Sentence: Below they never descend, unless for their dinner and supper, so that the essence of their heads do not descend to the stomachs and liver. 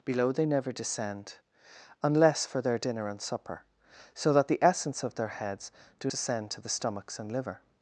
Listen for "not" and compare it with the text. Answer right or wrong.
wrong